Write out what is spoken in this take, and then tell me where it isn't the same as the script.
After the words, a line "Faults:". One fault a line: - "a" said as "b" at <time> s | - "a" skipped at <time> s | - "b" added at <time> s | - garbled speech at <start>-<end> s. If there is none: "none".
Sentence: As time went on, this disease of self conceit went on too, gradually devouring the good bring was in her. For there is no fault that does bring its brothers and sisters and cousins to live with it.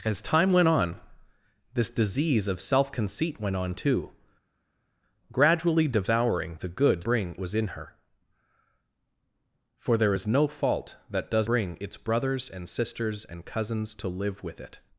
As time went on, this disease of self conceit went on too, gradually devouring the good bring was in her. For there is no fault that does bring its brothers and sisters and cousins to live with it.
Faults:
none